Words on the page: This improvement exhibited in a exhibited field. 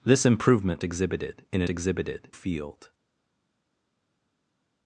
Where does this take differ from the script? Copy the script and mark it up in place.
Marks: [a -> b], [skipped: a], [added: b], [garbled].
This improvement exhibited in a exhibited field.